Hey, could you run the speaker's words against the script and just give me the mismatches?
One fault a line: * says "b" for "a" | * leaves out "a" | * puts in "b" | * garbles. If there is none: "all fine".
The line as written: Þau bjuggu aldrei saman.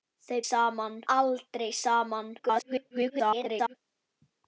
* says "saman" for "bjuggu"
* garbles